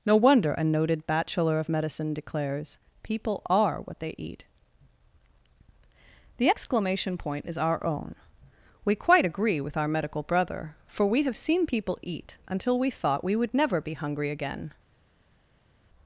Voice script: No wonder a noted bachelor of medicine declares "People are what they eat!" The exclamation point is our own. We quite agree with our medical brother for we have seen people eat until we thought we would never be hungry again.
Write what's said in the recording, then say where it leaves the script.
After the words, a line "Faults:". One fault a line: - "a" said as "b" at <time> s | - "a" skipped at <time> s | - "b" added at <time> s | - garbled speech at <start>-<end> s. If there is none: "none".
No wonder a noted bachelor of medicine declares "People are what they eat!" The exclamation point is our own. We quite agree with our medical brother for we have seen people eat until we thought we would never be hungry again.
Faults:
none